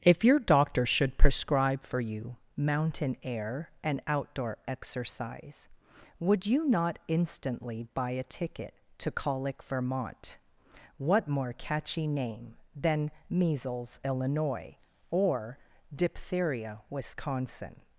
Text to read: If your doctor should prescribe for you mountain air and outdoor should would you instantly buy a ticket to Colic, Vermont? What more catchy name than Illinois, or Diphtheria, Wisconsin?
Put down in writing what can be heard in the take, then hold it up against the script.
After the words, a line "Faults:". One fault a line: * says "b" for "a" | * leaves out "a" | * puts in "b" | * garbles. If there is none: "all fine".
If your doctor should prescribe for you mountain air and outdoor exercise would you not instantly buy a ticket to Colic, Vermont? What more catchy name than Measles, Illinois, or Diphtheria, Wisconsin?
Faults:
* says "exercise" for "should"
* puts in "not"
* puts in "Measles"